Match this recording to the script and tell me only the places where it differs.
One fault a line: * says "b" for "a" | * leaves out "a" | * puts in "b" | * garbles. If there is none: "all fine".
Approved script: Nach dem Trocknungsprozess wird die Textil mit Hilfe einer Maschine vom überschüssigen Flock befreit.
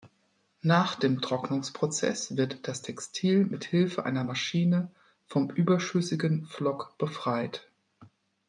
* says "das" for "die"